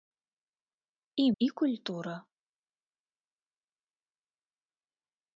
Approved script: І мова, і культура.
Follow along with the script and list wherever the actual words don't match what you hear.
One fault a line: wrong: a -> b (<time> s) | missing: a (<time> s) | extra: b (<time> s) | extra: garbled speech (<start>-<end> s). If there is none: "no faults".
missing: мова (1.3 s)